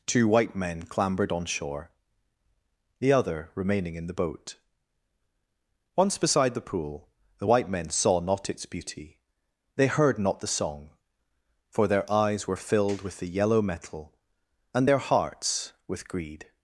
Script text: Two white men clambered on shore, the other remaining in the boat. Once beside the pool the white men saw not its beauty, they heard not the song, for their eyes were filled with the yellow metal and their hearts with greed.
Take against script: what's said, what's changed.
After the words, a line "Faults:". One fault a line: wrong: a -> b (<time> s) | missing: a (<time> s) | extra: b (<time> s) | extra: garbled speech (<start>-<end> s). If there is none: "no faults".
Two white men clambered on shore, the other remaining in the boat. Once beside the pool the white men saw not its beauty, they heard not the song, for their eyes were filled with the yellow metal and their hearts with greed.
Faults:
no faults